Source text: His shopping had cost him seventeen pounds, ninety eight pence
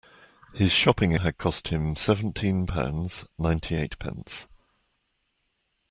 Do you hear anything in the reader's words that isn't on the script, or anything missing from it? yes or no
no